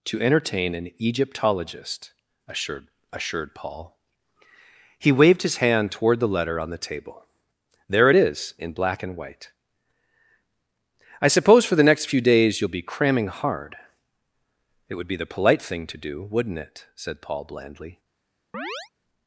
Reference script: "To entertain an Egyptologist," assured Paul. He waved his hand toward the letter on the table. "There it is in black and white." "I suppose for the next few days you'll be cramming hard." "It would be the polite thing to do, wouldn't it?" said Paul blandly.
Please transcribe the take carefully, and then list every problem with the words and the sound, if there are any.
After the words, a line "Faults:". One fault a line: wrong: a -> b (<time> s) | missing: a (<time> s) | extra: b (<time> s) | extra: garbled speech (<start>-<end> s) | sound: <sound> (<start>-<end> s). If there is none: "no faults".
"To entertain an Egyptologist," assured assured Paul. He waved his hand toward the letter on the table. "There it is in black and white." "I suppose for the next few days you'll be cramming hard." "It would be the polite thing to do, wouldn't it?" said Paul blandly.
Faults:
extra: assured (3.1 s)
sound: chirp (18.5-18.9 s)